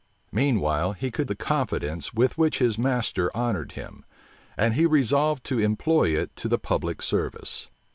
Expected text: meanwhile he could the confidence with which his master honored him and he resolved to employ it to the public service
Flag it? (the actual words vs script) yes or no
no